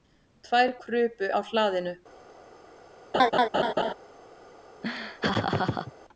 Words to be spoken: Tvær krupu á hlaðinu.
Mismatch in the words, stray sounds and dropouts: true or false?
true